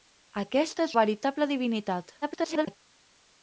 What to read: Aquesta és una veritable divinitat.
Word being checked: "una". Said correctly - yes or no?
no